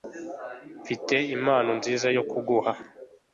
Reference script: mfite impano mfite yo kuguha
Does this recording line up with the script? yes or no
no